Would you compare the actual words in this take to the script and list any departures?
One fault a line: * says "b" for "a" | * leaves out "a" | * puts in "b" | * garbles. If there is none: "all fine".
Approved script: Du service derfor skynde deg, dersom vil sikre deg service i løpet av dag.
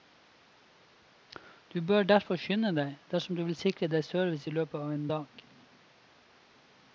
* says "bør" for "service"
* puts in "du"
* puts in "en"